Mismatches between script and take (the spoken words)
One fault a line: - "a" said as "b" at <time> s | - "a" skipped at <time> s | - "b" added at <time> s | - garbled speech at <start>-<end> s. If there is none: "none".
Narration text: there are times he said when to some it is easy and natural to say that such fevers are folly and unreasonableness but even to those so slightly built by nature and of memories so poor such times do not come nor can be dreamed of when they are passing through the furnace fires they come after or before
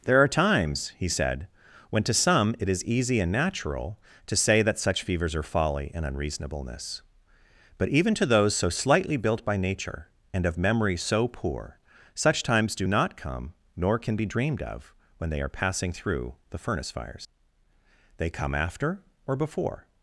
- "memories" said as "memory" at 10.6 s